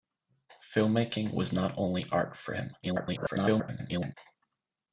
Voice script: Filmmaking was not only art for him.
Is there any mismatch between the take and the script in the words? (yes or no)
yes